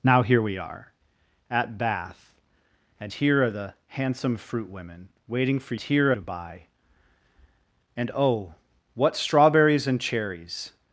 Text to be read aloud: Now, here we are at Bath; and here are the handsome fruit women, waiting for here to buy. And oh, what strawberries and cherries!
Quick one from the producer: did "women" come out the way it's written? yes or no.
yes